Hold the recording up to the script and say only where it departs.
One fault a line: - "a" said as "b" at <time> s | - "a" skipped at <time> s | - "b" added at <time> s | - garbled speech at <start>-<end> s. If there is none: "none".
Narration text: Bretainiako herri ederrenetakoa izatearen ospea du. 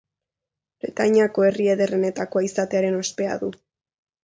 none